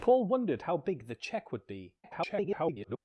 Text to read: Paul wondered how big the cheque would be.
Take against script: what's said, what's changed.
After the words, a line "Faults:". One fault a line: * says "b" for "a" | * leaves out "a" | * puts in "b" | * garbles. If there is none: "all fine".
Paul wondered how big the cheque would be. [garbled]
Faults:
* garbles